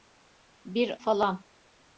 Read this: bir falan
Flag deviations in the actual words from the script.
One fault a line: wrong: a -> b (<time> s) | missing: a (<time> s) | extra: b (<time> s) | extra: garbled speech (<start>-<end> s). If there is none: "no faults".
no faults